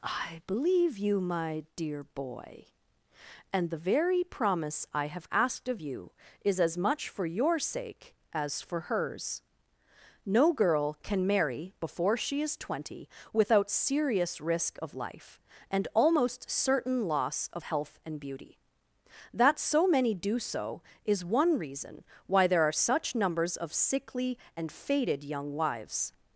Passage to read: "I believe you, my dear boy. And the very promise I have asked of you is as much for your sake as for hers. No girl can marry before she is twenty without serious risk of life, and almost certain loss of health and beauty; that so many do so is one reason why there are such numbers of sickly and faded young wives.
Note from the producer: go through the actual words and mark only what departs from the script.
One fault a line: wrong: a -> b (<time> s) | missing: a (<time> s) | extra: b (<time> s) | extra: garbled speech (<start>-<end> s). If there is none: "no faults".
no faults